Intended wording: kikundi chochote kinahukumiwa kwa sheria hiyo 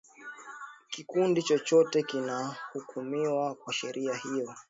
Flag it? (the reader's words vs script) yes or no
no